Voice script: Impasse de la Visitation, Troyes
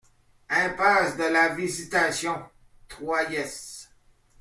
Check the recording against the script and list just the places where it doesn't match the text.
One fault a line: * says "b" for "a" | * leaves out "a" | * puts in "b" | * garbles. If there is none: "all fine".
all fine